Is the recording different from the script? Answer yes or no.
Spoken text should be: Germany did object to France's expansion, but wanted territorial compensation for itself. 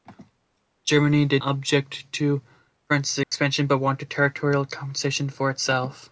no